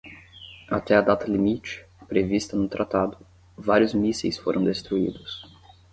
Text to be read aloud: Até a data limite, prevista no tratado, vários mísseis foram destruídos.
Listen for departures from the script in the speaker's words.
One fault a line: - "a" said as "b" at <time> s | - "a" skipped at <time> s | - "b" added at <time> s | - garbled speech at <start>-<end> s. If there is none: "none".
none